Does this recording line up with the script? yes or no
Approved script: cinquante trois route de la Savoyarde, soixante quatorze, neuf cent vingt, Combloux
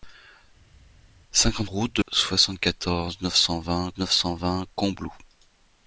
no